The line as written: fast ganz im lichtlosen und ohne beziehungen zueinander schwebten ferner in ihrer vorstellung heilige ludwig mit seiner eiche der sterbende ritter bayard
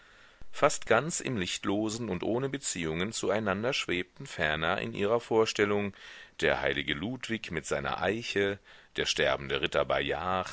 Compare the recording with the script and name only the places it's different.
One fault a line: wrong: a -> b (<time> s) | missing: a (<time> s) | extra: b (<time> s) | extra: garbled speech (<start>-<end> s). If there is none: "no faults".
extra: der (6.4 s)